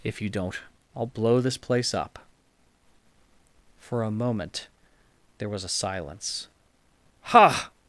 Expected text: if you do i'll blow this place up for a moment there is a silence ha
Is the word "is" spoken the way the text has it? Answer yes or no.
no